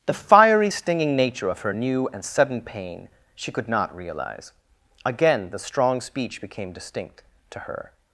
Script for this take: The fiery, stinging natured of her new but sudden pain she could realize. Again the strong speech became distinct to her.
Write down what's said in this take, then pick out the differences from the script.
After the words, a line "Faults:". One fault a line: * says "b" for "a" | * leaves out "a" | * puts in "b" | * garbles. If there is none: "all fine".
The fiery, stinging nature of her new and sudden pain she could not realize. Again the strong speech became distinct to her.
Faults:
* says "nature" for "natured"
* says "and" for "but"
* puts in "not"